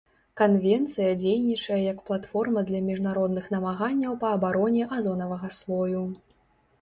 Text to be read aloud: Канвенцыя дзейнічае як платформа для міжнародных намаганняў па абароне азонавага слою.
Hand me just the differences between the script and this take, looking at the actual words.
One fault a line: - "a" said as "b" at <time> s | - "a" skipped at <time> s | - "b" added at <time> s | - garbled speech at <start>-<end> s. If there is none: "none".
none